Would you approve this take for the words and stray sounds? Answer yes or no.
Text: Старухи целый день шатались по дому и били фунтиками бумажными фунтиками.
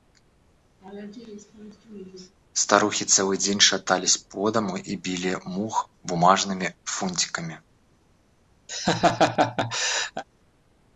no